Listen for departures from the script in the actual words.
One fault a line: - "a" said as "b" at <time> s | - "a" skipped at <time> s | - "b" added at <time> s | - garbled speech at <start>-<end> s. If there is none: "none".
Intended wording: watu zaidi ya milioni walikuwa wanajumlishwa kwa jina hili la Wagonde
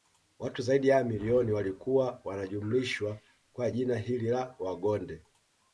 none